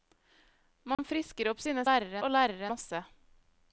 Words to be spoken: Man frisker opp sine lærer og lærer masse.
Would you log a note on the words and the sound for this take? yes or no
yes